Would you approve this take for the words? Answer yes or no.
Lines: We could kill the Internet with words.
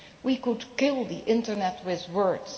yes